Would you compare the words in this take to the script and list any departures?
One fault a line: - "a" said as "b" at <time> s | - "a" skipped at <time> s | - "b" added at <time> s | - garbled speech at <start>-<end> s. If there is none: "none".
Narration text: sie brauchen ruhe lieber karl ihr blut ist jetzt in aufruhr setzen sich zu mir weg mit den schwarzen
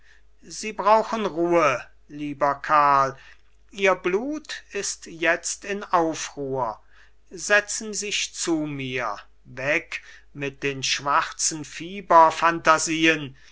none